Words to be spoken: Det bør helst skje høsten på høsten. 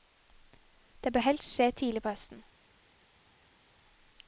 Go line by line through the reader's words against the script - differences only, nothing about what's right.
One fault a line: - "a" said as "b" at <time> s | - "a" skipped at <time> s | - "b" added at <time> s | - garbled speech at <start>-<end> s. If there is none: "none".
- "høsten" said as "tidlig" at 1.7 s